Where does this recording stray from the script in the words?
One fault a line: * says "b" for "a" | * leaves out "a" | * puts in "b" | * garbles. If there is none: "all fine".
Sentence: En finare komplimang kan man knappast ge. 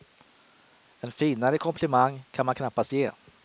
all fine